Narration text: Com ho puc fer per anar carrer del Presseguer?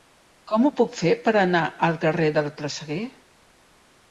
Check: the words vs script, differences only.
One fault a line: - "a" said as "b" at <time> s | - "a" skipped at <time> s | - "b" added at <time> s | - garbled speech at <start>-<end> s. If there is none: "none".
- "al" added at 1.9 s